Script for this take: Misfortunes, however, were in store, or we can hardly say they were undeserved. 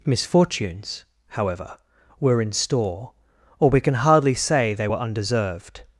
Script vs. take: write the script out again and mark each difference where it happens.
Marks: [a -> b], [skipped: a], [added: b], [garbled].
Misfortunes, however, were in store, or we can hardly say they were undeserved.